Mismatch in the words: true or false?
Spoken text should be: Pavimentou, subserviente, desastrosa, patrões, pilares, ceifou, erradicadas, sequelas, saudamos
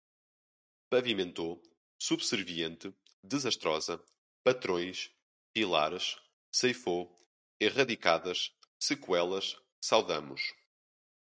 false